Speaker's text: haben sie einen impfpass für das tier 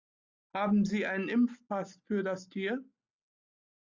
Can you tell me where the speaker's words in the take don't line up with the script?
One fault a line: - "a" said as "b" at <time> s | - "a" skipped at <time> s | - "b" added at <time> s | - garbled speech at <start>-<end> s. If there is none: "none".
none